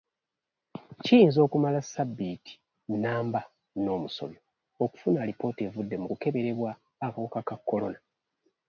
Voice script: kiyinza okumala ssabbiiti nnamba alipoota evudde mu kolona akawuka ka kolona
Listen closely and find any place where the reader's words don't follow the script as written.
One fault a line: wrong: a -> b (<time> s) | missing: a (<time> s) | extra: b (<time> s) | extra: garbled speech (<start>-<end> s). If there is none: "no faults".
extra: n'omusobyo okufuna (3.8 s)
wrong: kolona -> kukeberebwa (6.1 s)